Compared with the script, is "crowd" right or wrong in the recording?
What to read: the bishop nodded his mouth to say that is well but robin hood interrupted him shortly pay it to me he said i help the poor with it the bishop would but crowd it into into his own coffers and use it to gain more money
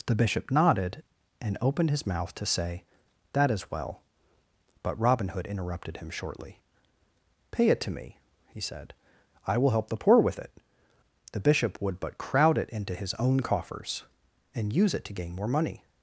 right